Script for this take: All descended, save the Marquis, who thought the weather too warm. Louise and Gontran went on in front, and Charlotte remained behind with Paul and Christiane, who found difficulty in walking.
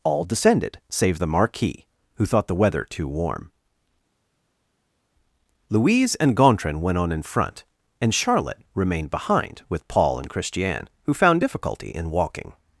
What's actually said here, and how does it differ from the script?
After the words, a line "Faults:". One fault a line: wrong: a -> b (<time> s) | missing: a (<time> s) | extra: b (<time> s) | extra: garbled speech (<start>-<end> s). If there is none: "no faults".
All descended, save the Marquis, who thought the weather too warm. Louise and Gontran went on in front, and Charlotte remained behind with Paul and Christiane, who found difficulty in walking.
Faults:
no faults